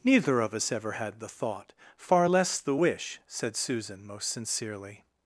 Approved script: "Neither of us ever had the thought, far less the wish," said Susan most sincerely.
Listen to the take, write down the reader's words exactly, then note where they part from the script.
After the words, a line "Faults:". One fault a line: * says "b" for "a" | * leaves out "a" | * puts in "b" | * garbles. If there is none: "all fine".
"Neither of us ever had the thought, far less the wish," said Susan most sincerely.
Faults:
all fine